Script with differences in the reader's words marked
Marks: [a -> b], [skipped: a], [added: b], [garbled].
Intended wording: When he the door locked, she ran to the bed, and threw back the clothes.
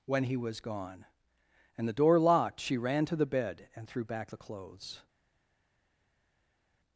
When he [added: was gone and] the door locked, she ran to the bed, and threw back the clothes.